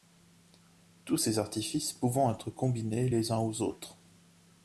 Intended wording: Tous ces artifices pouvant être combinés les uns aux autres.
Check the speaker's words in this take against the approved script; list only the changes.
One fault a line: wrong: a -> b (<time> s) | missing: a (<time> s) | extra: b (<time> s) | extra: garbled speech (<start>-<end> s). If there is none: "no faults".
no faults